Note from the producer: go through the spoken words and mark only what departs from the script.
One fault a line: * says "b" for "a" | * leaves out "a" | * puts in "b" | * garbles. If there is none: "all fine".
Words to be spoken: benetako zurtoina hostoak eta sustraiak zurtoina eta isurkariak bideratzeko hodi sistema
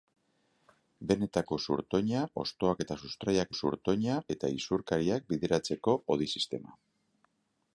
all fine